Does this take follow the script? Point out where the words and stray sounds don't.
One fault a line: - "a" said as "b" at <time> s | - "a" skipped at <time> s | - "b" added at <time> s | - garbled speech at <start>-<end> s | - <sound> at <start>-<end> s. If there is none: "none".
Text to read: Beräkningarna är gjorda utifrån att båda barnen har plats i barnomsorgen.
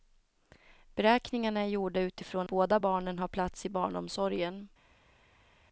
- "att" skipped at 2.5 s